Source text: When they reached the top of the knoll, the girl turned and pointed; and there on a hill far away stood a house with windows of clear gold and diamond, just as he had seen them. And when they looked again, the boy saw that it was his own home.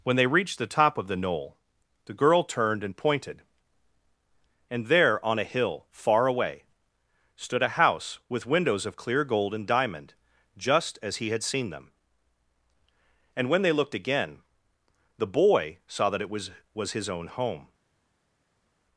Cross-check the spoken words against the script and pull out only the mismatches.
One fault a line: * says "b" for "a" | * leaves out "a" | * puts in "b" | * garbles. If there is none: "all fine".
* puts in "was"